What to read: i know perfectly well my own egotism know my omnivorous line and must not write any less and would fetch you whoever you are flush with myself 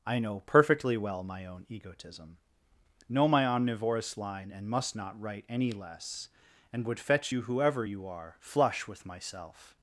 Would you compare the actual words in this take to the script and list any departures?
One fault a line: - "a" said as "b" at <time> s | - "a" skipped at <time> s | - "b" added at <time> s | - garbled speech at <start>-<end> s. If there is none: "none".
none